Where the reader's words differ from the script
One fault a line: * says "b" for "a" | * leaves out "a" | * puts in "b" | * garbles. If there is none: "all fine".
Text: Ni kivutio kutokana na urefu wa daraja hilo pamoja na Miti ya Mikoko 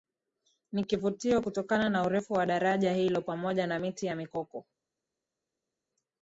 all fine